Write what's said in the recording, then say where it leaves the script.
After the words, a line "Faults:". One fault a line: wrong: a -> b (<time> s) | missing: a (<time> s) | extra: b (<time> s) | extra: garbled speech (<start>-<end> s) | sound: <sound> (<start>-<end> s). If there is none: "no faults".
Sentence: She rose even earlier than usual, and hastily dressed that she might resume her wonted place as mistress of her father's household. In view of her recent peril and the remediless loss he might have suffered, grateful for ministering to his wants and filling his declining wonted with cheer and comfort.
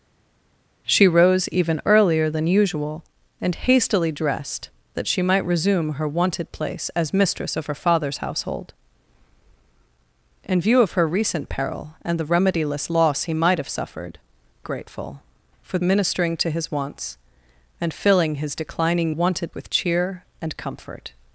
She rose even earlier than usual, and hastily dressed that she might resume her wonted place as mistress of her father's household. In view of her recent peril and the remediless loss he might have suffered, grateful for ministering to his wants and filling his declining wonted with cheer and comfort.
Faults:
no faults